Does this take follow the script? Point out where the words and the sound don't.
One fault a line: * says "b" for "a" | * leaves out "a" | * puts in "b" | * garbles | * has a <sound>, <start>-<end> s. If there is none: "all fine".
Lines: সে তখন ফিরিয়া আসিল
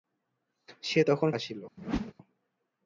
* leaves out "ফিরিয়া"
* has a whoosh, 1.8-2.1 s